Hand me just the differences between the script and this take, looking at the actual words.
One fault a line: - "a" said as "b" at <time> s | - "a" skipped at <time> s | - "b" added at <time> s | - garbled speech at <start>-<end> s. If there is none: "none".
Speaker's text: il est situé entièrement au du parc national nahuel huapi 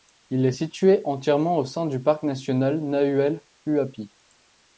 - "sein" added at 1.7 s